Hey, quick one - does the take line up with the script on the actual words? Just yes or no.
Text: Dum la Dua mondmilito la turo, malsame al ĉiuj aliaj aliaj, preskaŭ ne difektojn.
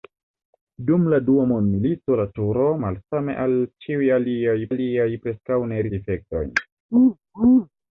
yes